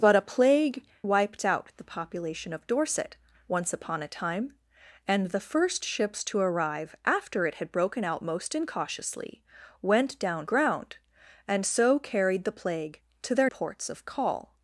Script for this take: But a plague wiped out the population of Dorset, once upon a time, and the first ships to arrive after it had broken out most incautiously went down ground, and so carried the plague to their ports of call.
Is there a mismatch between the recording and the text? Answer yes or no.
no